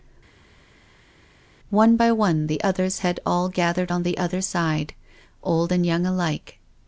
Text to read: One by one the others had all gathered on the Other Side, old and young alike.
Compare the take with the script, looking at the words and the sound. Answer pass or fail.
pass